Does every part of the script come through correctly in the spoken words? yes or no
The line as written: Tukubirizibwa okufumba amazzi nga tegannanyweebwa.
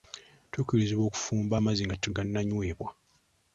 yes